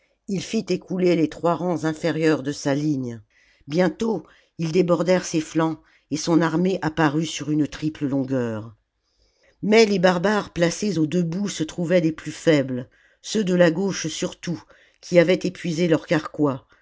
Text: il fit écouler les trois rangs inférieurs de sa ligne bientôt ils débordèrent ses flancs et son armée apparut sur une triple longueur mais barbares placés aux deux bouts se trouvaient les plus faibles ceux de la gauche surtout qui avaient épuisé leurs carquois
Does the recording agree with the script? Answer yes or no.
no